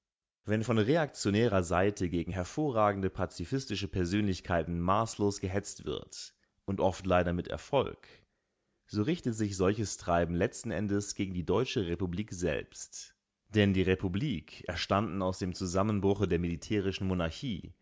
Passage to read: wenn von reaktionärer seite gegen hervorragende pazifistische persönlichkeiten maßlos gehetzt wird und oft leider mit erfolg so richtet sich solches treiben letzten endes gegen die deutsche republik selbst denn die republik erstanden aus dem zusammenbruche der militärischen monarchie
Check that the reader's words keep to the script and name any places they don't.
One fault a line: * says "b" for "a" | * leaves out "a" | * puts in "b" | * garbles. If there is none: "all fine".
all fine